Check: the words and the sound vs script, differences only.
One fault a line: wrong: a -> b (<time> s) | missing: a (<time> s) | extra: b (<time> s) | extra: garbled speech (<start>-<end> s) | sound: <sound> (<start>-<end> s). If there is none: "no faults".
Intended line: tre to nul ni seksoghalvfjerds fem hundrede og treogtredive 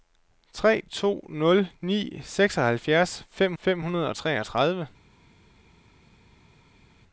extra: fem (3.5 s)